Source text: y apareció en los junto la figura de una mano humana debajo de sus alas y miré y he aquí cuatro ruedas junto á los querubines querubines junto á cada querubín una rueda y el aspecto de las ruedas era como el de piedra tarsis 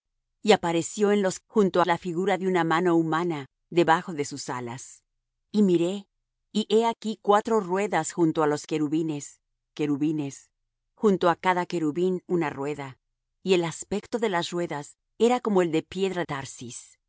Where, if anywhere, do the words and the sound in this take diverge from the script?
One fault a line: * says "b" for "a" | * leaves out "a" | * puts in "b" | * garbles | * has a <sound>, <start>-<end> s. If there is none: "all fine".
all fine